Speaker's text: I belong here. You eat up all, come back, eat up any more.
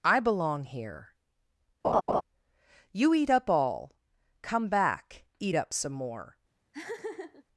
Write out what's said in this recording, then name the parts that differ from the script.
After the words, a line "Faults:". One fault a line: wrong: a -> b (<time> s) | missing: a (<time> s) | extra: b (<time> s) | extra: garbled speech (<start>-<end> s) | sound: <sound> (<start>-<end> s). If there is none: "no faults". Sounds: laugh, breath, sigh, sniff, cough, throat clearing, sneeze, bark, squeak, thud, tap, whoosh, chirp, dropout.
I belong here. You eat up all, come back, eat up some more.
Faults:
sound: laugh (1.8-2.2 s)
wrong: any -> some (5.7 s)
sound: laugh (6.7-7.4 s)